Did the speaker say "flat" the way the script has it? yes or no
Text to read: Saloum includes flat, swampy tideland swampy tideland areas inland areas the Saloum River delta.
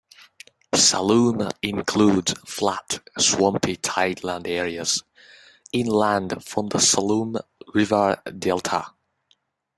yes